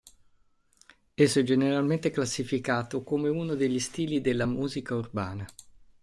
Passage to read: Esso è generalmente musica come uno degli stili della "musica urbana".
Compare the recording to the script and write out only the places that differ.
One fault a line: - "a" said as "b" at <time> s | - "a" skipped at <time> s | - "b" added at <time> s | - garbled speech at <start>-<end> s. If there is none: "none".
- "musica" said as "classificato" at 2.1 s